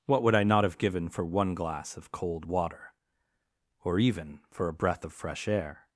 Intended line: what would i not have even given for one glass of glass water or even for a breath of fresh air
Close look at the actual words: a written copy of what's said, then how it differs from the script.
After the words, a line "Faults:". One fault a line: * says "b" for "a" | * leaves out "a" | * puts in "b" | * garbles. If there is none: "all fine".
what would i not have given for one glass of cold water or even for a breath of fresh air
Faults:
* leaves out "even"
* says "cold" for "glass"